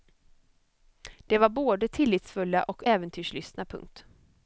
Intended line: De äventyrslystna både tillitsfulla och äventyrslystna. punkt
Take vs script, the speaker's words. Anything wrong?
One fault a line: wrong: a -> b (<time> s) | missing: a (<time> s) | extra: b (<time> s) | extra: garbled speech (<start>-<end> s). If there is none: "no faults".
wrong: äventyrslystna -> var (1.4 s)